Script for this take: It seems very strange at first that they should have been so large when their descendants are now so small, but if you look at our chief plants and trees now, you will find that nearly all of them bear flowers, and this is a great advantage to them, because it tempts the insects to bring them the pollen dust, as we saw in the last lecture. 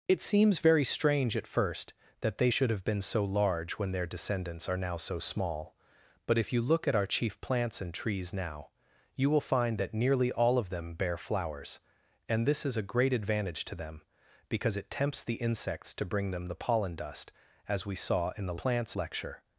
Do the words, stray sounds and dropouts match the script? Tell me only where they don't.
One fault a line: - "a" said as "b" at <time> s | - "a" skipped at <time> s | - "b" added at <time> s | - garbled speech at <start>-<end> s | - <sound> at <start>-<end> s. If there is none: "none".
- "last" said as "plants" at 18.6 s